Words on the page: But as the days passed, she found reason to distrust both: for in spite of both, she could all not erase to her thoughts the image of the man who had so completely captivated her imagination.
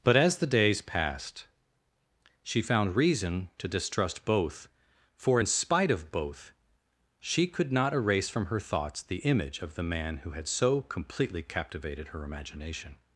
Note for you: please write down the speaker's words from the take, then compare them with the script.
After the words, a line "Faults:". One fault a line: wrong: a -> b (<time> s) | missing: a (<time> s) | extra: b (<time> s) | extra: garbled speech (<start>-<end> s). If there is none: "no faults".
But as the days passed, she found reason to distrust both: for in spite of both, she could not erase from her thoughts the image of the man who had so completely captivated her imagination.
Faults:
missing: all (7.7 s)
wrong: to -> from (8.3 s)